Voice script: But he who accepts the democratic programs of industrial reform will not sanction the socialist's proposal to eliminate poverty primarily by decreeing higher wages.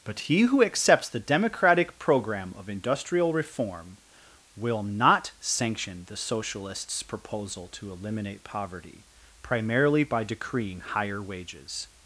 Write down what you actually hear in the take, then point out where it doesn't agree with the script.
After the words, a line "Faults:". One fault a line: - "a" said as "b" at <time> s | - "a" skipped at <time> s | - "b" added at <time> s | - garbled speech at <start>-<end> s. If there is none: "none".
But he who accepts the democratic program of industrial reform will not sanction the socialist's proposal to eliminate poverty primarily by decreeing higher wages.
Faults:
- "programs" said as "program" at 2.0 s